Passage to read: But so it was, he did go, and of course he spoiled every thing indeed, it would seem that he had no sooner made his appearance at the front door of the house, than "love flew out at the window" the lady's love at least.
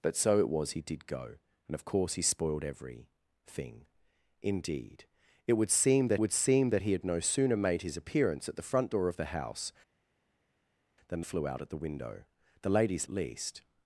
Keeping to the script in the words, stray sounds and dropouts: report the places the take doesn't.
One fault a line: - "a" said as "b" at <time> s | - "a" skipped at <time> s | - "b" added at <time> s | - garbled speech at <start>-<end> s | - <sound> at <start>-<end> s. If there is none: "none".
- "would seem that" added at 6.1 s
- "love" skipped at 11.2 s
- "love" skipped at 13.1 s